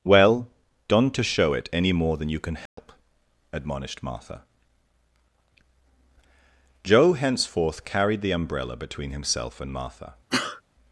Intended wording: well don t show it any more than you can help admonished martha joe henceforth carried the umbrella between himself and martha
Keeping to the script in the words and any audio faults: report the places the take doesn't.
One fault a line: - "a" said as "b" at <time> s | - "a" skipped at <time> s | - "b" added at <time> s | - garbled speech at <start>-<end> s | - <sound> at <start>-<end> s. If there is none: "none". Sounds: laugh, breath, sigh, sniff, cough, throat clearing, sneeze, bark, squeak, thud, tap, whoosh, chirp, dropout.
- "don t" said as "don't to" at 0.9 s
- dropout at 2.7-2.8 s
- sneeze at 10.3-10.6 s